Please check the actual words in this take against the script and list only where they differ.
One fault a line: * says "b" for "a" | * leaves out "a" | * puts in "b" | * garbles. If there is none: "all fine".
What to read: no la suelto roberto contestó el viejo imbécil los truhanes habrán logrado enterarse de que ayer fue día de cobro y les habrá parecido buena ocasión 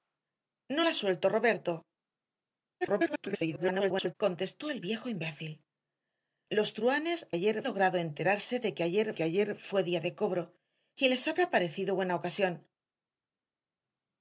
* garbles
* says "ayer" for "habrán"
* puts in "que ayer"